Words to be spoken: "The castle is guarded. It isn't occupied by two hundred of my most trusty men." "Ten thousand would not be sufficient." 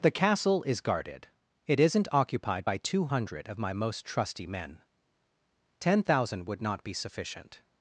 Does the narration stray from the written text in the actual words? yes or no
no